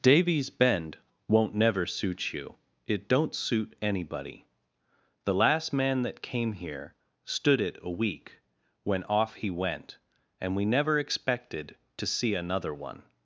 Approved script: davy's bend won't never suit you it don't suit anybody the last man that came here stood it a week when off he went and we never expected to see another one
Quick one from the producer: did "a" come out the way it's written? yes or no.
yes